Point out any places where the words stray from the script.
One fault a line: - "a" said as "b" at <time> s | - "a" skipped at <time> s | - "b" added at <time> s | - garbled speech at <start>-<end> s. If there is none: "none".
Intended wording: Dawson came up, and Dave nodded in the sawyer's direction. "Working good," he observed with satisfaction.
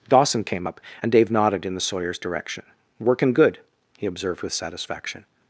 none